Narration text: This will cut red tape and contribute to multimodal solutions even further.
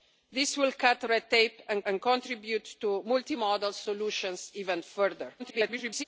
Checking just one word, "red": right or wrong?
right